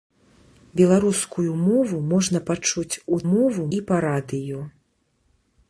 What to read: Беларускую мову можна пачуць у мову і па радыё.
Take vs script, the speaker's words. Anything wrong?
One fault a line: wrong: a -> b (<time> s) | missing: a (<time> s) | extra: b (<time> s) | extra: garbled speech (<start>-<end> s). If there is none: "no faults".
no faults